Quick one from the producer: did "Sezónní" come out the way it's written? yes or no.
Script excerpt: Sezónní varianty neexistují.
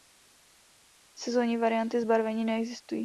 yes